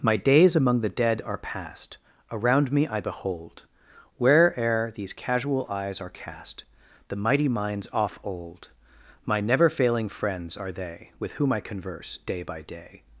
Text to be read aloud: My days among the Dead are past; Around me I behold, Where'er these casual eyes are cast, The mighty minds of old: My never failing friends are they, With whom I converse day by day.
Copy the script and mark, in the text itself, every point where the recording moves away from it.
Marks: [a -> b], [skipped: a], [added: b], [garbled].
My days among the Dead are past; Around me I behold, Where'er these casual eyes are cast, The mighty minds [of -> off] old: My never failing friends are they, With whom I converse day by day.